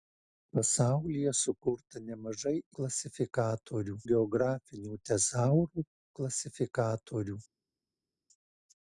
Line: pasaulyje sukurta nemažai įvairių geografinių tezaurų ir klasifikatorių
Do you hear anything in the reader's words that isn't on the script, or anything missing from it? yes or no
yes